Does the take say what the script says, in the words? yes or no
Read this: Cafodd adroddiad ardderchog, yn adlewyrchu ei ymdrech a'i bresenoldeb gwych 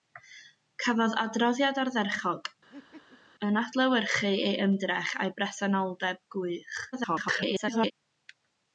no